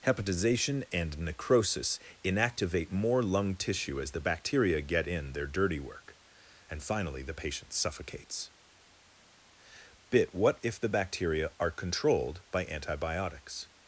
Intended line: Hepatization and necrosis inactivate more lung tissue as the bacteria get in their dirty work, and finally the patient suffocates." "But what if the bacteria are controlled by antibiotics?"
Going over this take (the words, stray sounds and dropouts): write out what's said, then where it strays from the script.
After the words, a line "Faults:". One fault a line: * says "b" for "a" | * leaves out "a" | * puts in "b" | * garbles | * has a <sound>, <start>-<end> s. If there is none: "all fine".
Hepatization and necrosis inactivate more lung tissue as the bacteria get in their dirty work, and finally the patient suffocates." "Bit what if the bacteria are controlled by antibiotics?"
Faults:
* says "Bit" for "But"